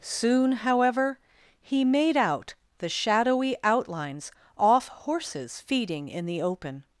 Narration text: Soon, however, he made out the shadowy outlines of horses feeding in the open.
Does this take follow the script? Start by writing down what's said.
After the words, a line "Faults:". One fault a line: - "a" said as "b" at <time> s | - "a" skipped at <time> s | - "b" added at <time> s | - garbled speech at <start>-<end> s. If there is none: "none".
Soon, however, he made out the shadowy outlines off horses feeding in the open.
Faults:
- "of" said as "off" at 4.6 s